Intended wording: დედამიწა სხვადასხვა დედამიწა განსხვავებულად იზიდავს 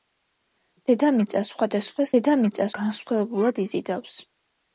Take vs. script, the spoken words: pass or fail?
pass